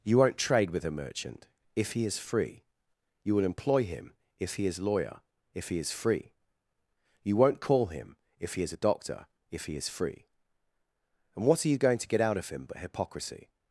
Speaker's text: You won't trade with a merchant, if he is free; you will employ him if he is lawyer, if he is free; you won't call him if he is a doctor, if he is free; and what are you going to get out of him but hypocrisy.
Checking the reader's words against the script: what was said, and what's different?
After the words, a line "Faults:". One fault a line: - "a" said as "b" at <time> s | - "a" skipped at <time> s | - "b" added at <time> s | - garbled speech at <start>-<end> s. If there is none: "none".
You won't trade with a merchant, if he is free; you will employ him if he is lawyer, if he is free; you won't call him if he is a doctor, if he is free; and what are you going to get out of him but hypocrisy.
Faults:
none